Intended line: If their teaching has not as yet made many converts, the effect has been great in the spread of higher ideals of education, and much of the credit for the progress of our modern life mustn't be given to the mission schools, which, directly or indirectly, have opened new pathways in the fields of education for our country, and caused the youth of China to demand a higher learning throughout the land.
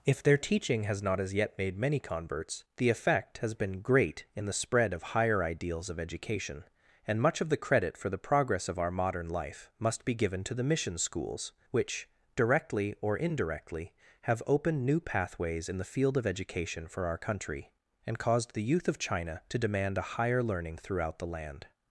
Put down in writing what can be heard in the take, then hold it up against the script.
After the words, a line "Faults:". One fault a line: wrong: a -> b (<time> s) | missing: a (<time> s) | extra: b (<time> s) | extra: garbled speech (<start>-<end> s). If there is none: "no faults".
If their teaching has not as yet made many converts, the effect has been great in the spread of higher ideals of education, and much of the credit for the progress of our modern life must be given to the mission schools, which, directly or indirectly, have opened new pathways in the field of education for our country, and caused the youth of China to demand a higher learning throughout the land.
Faults:
wrong: mustn't -> must (9.8 s)
wrong: fields -> field (15.8 s)